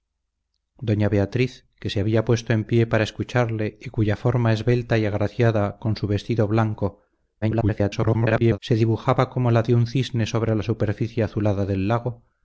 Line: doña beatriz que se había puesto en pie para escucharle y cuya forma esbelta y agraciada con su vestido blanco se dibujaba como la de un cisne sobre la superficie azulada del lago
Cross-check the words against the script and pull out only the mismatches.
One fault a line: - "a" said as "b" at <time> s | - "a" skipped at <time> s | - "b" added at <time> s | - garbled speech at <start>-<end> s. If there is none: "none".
- garbled speech at 7.4-8.6 s